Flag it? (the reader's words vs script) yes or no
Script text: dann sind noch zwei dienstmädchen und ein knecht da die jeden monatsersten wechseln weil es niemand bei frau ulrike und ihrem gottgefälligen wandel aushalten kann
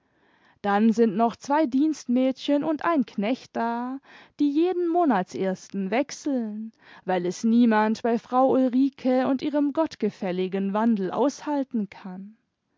no